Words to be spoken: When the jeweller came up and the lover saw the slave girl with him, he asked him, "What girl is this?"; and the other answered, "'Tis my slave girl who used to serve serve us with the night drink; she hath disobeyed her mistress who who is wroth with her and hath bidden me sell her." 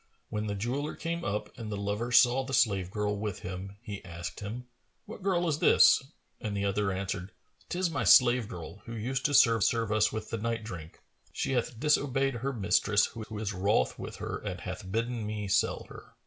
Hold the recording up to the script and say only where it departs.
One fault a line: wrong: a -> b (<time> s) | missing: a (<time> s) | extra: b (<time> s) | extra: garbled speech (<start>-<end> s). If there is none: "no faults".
no faults